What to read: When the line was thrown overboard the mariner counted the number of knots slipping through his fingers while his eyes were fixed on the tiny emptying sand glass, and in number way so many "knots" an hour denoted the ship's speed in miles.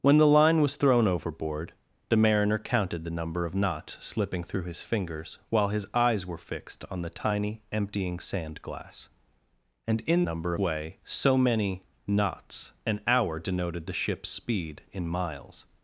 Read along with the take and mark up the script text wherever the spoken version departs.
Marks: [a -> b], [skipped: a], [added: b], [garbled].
When the line was thrown overboard the mariner counted the number of knots slipping through his fingers while his eyes were fixed on the tiny emptying sand glass, and in number way so many "knots" an hour denoted the ship's speed in miles.